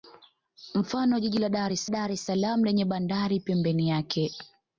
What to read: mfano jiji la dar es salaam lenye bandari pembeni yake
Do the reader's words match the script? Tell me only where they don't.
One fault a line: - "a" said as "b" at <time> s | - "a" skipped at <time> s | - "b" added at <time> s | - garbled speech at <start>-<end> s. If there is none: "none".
- "dar es" added at 1.9 s